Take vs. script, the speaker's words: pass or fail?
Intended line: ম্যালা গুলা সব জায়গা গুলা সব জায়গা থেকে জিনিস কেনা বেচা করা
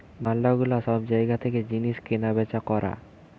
fail